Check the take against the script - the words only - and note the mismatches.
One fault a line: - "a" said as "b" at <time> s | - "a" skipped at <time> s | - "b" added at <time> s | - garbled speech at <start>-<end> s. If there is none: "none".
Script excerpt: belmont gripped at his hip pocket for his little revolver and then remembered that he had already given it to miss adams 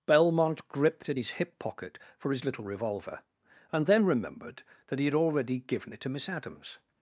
none